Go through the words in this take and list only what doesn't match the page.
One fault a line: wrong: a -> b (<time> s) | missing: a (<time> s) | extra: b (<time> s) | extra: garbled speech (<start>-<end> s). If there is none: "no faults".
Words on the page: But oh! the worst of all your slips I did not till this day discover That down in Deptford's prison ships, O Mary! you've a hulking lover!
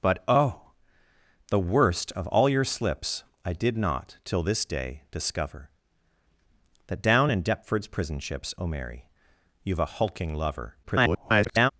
extra: garbled speech (10.8-11.7 s)